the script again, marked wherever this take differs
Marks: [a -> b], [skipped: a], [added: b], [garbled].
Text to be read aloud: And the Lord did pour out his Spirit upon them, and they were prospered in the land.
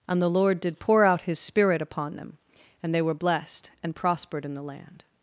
And the Lord did pour out his Spirit upon them, and they were [added: blessed and] prospered in the land.